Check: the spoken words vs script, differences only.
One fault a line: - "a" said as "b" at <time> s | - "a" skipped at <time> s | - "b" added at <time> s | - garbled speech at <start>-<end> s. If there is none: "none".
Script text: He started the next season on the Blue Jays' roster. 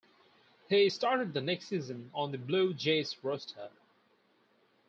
none